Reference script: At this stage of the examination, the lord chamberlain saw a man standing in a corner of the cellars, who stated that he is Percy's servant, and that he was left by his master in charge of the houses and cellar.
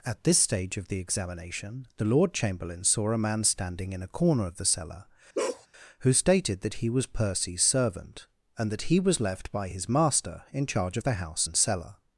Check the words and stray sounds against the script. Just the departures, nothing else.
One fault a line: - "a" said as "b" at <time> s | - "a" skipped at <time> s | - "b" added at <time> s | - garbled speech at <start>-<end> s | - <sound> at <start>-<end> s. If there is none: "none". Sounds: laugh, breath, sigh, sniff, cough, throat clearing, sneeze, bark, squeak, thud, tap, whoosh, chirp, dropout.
- "cellars" said as "cellar" at 4.7 s
- bark at 5.3-5.7 s
- "is" said as "was" at 6.9 s
- "houses" said as "house" at 11.1 s